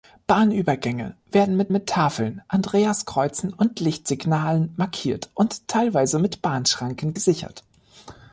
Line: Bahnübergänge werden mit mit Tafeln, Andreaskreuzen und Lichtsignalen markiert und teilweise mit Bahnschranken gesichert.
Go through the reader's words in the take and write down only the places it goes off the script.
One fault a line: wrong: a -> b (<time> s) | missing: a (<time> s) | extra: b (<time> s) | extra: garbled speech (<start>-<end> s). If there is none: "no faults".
no faults